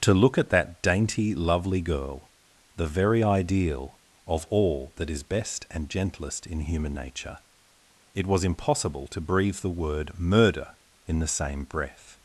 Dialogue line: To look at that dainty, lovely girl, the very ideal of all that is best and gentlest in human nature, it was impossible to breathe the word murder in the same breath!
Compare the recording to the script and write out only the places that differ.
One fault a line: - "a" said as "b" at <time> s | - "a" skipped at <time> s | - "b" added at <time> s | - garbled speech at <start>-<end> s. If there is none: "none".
none